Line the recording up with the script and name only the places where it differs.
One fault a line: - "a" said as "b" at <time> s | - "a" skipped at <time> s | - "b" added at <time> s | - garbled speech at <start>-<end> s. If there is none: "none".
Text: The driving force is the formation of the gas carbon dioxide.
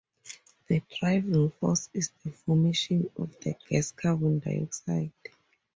none